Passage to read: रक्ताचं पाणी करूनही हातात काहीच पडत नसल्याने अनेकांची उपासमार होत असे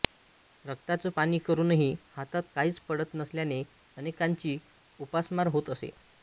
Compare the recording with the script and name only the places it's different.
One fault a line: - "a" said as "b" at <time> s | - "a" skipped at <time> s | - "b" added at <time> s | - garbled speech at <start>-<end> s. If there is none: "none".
none